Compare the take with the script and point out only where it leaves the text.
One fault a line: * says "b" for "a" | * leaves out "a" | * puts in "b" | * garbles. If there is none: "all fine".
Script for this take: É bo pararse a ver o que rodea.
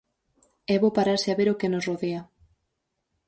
* puts in "nos"